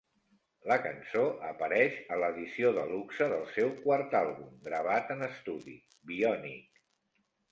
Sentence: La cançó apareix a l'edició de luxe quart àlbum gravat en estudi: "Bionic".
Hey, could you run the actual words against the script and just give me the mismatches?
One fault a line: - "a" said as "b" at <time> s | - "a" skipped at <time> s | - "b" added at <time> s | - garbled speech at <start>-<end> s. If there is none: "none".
- "del seu" added at 3.3 s